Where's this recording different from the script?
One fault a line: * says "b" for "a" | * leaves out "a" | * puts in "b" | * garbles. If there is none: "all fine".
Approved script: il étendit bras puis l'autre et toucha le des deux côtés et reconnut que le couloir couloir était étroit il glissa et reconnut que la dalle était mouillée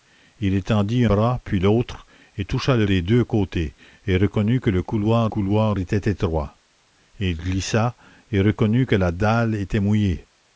all fine